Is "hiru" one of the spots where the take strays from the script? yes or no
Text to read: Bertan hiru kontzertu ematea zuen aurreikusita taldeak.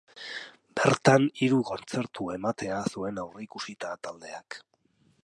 no